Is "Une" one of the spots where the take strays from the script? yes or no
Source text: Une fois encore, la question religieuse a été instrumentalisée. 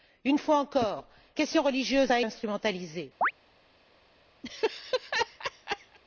no